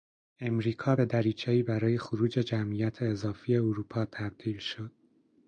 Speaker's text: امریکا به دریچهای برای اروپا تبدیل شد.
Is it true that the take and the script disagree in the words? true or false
true